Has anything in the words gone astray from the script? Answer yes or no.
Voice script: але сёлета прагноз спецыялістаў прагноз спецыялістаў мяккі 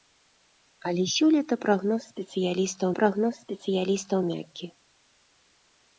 no